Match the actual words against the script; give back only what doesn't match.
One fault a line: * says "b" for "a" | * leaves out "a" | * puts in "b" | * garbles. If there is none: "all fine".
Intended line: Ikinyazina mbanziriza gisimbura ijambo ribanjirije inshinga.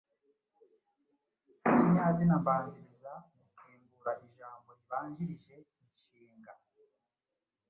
all fine